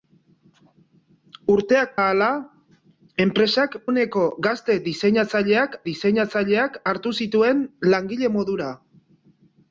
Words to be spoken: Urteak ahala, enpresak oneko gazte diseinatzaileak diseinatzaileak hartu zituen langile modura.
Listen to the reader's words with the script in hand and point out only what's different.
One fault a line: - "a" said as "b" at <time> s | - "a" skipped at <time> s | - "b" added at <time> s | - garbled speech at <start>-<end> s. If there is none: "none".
none